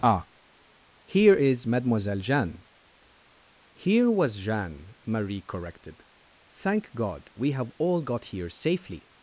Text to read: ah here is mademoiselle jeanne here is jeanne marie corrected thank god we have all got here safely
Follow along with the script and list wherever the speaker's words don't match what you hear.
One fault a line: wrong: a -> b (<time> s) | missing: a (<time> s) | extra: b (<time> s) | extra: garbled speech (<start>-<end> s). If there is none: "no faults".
wrong: is -> was (4.1 s)